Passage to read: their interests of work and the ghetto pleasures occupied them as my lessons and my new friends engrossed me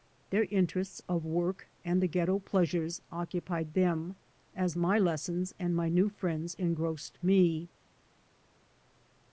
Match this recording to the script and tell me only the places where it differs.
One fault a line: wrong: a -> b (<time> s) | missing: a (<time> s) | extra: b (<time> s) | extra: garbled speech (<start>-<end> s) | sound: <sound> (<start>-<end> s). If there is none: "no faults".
no faults